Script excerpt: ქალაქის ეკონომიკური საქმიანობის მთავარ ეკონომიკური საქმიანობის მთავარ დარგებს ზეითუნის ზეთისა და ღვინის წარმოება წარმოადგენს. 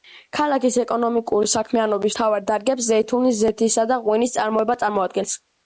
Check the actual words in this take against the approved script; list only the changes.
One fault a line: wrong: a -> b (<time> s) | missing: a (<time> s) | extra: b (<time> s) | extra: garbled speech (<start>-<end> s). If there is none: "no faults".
missing: ეკონომიკური საქმიანობის მთავარ (2.5 s)